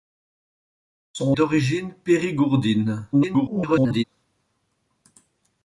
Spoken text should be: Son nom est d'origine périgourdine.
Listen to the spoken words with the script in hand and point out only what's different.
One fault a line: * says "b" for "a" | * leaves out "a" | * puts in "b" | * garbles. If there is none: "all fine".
* leaves out "nom est"
* garbles